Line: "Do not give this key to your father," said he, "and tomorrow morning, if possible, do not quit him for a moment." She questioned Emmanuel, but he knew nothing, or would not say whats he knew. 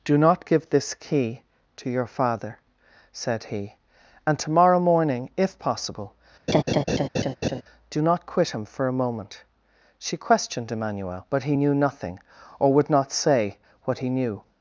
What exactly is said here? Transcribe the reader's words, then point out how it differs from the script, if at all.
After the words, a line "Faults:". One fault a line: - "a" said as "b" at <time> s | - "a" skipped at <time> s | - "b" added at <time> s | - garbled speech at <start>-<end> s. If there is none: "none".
"Do not give this key to your father," said he, "and tomorrow morning, if possible, do not quit him for a moment." She questioned Emmanuel, but he knew nothing, or would not say what he knew.
Faults:
- "whats" said as "what" at 13.8 s